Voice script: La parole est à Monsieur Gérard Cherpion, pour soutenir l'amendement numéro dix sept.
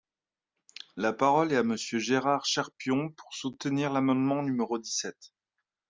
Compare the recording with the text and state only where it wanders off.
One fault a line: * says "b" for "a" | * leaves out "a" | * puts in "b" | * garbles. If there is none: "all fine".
all fine